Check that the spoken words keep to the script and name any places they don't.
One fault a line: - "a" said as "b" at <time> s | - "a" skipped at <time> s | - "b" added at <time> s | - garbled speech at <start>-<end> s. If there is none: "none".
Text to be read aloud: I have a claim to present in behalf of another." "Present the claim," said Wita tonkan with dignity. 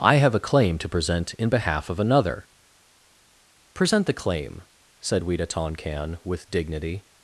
none